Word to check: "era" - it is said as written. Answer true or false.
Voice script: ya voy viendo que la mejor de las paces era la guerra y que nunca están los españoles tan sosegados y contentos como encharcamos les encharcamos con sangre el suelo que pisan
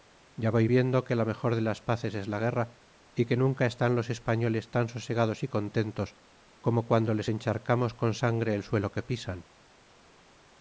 false